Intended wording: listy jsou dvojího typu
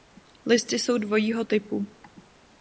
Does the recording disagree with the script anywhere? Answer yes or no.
no